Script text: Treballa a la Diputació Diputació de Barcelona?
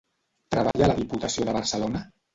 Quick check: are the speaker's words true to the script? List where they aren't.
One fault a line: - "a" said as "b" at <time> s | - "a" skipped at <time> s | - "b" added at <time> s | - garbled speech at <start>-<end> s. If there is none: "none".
- "Diputació" skipped at 1.5 s